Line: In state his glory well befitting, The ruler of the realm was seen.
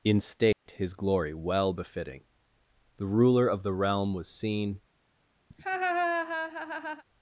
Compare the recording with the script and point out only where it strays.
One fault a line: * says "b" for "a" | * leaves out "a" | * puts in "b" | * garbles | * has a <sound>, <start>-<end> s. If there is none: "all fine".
* has a dropout, 0.5-0.7 s
* has a laugh, 5.5-7.0 s